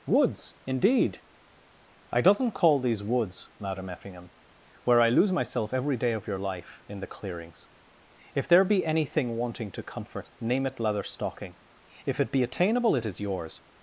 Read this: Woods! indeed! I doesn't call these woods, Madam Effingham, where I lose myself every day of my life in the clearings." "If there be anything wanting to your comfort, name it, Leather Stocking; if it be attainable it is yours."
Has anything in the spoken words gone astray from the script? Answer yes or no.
yes